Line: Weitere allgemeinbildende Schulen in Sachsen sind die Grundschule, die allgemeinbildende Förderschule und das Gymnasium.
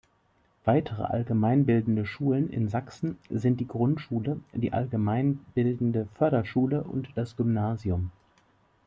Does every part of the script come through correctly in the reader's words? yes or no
yes